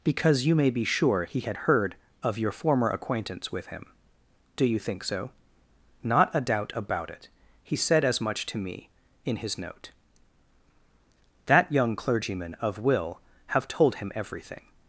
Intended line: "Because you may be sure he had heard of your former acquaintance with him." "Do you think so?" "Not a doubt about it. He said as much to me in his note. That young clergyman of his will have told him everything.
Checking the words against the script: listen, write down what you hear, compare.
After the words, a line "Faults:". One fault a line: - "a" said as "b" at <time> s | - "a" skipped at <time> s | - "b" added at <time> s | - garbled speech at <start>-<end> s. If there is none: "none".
"Because you may be sure he had heard of your former acquaintance with him." "Do you think so?" "Not a doubt about it. He said as much to me in his note. That young clergyman of will have told him everything.
Faults:
- "his" skipped at 12.8 s